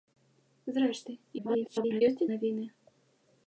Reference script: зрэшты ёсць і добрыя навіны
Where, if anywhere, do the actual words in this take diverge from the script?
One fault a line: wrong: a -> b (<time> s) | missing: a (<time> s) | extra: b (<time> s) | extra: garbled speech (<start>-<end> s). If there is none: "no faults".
extra: garbled speech (1.4-2.0 s)
missing: добрыя (2.3 s)